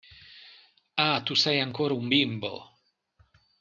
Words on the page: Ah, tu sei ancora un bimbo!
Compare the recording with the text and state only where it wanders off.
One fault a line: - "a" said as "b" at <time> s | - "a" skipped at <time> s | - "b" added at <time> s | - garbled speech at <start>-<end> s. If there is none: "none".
none